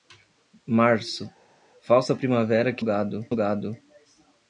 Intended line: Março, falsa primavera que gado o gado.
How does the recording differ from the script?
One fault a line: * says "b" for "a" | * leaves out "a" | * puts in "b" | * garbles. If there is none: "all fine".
all fine